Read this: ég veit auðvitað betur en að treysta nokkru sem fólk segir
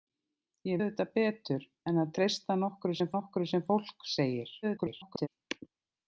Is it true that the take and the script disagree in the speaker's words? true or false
true